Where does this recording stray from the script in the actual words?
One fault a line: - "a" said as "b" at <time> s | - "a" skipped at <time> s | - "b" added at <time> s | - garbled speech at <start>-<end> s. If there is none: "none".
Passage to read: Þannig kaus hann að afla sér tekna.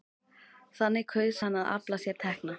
none